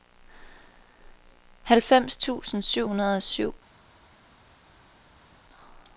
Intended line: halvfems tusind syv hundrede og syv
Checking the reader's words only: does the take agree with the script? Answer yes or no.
yes